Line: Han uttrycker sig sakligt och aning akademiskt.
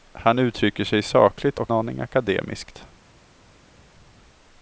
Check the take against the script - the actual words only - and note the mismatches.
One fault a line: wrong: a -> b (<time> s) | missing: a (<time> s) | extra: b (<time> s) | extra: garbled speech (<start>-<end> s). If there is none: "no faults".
no faults